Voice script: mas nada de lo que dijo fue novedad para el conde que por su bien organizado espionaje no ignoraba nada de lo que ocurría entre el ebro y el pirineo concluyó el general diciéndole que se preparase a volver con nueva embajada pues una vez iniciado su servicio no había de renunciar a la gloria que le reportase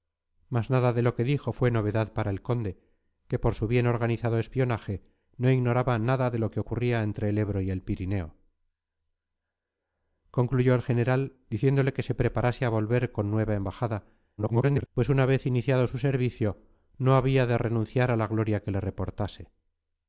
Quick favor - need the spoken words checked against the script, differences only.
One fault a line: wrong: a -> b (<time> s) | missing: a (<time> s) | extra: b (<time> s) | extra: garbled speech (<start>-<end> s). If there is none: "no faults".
extra: garbled speech (14.4-14.9 s)